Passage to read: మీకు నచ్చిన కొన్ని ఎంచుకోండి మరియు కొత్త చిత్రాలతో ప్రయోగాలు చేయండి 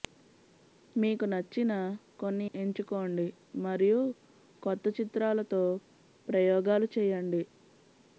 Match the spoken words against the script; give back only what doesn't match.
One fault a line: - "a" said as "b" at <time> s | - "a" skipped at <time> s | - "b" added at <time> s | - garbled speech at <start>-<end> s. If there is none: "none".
none